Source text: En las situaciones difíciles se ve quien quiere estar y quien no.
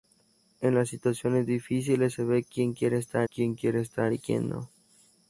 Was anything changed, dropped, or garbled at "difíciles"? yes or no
no